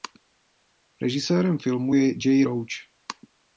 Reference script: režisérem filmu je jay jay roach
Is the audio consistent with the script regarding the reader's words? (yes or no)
no